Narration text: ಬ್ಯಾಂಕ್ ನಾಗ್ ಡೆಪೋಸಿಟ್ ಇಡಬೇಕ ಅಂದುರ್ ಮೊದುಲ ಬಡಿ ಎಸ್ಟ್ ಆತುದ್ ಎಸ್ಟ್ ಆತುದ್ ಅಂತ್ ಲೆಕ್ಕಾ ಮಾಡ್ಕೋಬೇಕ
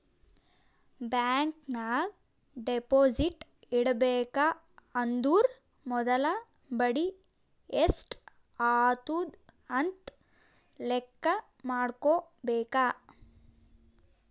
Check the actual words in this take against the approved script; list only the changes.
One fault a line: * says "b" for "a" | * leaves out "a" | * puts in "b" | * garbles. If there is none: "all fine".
* leaves out "ಎಸ್ಟ್ ಆತುದ್"